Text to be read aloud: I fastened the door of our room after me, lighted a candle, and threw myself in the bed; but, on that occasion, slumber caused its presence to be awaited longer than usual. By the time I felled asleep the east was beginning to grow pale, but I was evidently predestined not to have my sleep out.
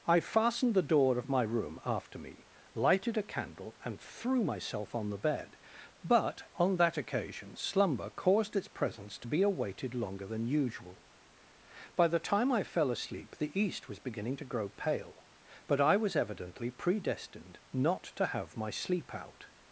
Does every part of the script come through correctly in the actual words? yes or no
no